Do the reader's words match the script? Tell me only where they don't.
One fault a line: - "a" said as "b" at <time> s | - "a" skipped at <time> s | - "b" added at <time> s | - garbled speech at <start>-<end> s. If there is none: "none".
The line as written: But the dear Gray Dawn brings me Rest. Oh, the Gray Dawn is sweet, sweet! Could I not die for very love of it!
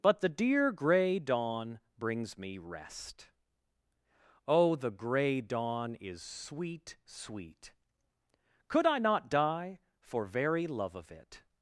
none